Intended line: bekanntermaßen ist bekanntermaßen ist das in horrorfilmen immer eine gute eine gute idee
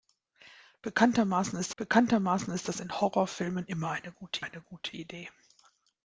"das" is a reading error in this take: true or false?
false